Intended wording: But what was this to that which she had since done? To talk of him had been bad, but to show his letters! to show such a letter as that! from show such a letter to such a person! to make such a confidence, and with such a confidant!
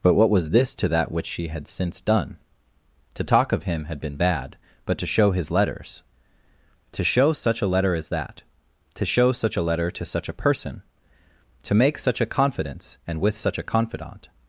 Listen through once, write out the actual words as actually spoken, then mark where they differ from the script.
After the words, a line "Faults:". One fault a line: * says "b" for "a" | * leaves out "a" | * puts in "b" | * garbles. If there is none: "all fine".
But what was this to that which she had since done? To talk of him had been bad, but to show his letters! to show such a letter as that! to show such a letter to such a person! to make such a confidence, and with such a confidant!
Faults:
* says "to" for "from"